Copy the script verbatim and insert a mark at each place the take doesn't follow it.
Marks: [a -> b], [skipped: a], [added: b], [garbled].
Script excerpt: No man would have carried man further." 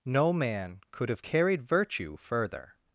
No man [would -> could] have carried [man -> virtue] further."